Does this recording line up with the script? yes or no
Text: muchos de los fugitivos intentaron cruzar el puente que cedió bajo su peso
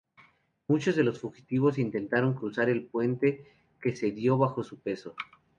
yes